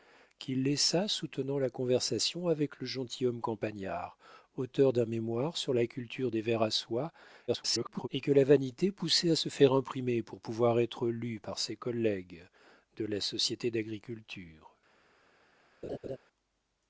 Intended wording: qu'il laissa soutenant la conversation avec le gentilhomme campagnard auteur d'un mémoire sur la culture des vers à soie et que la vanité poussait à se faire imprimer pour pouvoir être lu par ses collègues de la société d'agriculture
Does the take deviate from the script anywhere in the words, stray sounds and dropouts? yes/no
yes